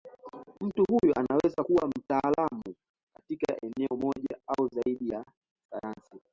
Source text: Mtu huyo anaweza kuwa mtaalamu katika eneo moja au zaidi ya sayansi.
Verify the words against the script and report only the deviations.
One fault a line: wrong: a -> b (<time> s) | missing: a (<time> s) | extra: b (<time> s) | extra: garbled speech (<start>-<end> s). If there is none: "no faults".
no faults